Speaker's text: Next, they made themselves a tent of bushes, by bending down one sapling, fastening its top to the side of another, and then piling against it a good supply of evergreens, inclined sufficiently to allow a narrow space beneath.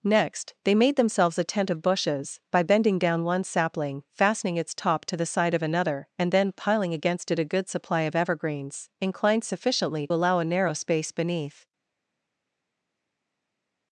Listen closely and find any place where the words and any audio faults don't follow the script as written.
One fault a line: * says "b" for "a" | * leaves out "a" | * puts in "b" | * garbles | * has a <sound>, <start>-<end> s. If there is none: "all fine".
* leaves out "to"